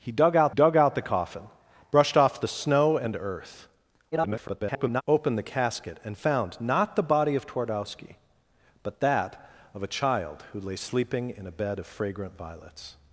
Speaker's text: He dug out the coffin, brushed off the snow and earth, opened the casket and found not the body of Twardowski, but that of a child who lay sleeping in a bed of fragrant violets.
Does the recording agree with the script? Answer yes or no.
no